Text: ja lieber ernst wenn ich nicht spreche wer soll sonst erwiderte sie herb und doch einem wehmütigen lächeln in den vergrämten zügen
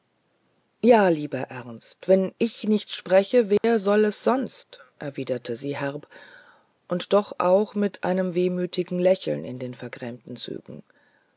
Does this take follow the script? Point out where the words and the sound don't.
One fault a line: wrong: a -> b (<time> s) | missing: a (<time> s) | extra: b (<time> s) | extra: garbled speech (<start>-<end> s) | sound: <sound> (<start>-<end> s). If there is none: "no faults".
sound: dropout (3.6-3.6 s)
extra: es (4.0 s)
extra: auch mit (7.4 s)